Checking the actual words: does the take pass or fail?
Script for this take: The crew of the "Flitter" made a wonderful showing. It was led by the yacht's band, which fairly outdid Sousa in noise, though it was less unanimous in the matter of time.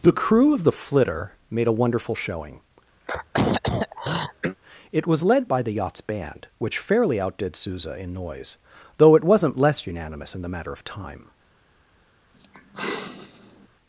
fail